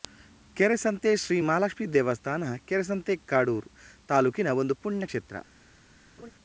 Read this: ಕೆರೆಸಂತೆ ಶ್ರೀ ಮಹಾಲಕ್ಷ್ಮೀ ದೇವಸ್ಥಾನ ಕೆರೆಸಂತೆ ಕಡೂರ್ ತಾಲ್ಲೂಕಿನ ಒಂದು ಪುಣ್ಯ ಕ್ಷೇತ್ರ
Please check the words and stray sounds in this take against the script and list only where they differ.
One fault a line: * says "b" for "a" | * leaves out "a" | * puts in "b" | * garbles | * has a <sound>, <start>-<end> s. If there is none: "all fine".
* has a laugh, 6.2-6.3 s